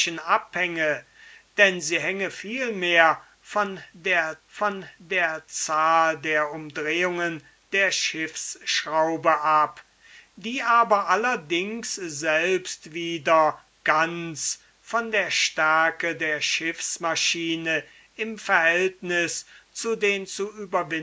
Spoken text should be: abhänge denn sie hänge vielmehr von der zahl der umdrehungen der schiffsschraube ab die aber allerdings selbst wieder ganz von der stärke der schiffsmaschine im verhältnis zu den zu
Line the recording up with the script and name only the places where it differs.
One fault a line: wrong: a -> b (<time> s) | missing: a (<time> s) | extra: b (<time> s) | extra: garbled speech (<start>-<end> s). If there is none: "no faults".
extra: von der (4.5 s)